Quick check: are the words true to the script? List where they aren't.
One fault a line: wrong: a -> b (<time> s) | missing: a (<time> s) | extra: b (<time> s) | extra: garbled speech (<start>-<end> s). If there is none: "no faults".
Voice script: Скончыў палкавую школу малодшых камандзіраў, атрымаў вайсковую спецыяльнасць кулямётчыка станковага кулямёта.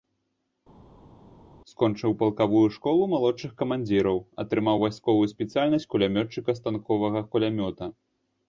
no faults